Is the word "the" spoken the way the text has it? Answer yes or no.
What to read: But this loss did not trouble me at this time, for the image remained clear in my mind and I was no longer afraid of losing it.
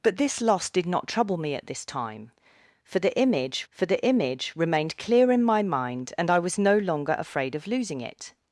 yes